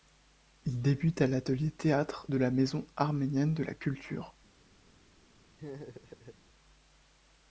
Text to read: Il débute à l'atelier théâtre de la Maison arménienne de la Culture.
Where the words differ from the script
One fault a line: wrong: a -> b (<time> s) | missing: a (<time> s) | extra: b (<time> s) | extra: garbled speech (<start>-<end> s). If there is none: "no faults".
no faults